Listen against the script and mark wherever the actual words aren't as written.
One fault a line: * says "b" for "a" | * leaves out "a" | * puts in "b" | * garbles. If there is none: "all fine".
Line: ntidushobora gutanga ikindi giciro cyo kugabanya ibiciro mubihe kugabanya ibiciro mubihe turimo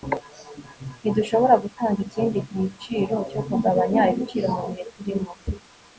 * leaves out "kugabanya ibiciro mubihe"